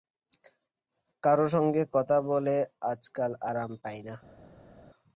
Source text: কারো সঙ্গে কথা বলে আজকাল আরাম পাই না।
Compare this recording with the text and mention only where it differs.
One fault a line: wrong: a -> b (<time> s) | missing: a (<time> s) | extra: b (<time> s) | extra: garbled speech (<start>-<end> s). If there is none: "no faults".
no faults